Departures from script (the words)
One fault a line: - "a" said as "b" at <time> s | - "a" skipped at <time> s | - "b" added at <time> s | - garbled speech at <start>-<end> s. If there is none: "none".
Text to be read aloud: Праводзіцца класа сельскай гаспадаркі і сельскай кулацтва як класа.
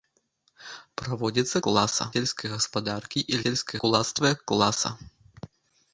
none